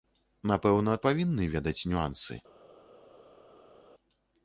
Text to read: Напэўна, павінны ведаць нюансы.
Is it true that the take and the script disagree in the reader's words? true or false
false